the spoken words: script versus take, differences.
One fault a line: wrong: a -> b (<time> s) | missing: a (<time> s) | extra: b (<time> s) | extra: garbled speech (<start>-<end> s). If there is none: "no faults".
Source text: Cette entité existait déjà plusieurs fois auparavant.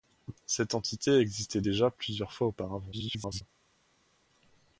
extra: garbled speech (2.9-3.4 s)